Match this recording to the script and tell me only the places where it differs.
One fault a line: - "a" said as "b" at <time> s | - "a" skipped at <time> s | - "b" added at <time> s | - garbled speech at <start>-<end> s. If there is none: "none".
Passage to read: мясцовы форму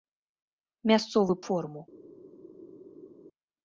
none